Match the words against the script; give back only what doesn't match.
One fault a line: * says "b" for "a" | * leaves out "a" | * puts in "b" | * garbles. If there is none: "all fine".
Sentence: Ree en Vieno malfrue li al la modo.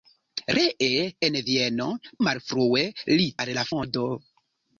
all fine